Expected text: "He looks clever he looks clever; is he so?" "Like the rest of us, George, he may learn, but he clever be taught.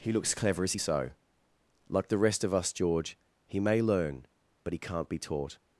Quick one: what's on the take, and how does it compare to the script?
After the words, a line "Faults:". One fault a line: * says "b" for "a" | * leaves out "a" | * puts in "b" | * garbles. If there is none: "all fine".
"He looks clever; is he so?" "Like the rest of us, George, he may learn, but he can't be taught.
Faults:
* leaves out "he looks clever"
* says "can't" for "clever"